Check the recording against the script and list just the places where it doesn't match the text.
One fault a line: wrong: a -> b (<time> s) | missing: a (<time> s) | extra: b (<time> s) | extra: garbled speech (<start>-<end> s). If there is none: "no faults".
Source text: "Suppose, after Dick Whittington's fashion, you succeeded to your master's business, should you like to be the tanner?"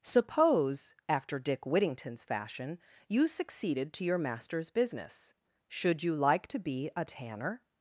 wrong: the -> a (6.9 s)